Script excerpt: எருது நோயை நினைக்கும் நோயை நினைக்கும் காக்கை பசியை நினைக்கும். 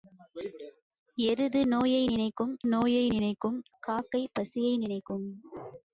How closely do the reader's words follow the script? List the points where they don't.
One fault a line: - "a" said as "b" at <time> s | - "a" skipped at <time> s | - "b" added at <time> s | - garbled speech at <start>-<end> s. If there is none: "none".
none